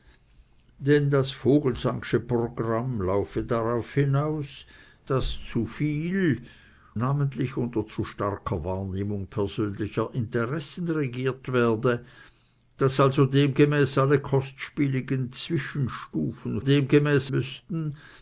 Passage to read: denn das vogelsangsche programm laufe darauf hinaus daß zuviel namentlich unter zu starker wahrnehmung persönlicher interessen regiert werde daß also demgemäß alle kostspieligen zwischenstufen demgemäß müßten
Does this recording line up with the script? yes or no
yes